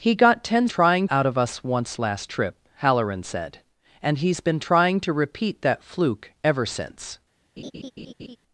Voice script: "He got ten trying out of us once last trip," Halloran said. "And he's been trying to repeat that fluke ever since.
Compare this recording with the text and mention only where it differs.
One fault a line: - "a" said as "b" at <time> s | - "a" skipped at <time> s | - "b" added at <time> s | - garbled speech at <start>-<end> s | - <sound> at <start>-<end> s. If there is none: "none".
- laugh at 7.6-8.4 s